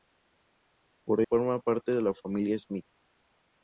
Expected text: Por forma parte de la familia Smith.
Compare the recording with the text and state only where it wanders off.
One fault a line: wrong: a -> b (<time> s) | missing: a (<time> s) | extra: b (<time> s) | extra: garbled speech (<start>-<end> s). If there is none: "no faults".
no faults